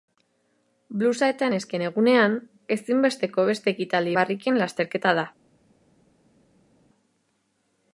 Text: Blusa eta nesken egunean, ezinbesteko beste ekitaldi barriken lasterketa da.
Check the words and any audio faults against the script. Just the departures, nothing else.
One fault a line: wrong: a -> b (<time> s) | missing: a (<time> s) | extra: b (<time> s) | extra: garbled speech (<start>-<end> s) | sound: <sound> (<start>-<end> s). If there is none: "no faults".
no faults